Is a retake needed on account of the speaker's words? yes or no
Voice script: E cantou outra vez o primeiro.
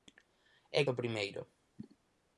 yes